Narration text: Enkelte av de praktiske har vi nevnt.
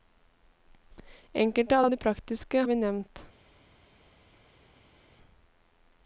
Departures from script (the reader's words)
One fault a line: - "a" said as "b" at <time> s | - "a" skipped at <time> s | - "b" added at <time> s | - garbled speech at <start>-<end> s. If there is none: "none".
- "av" added at 1.8 s
- "har" skipped at 2.6 s